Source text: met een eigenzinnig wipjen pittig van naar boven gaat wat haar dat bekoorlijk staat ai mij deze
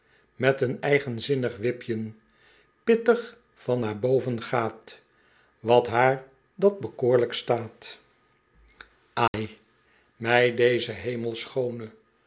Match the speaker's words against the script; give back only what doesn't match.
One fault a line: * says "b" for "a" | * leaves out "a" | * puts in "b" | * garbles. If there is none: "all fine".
all fine